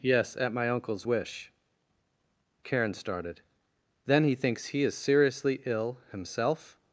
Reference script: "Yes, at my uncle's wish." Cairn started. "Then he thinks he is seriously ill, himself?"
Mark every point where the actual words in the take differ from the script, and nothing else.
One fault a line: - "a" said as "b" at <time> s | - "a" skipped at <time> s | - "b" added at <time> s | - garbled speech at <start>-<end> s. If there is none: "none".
- "Cairn" said as "Karen" at 2.6 s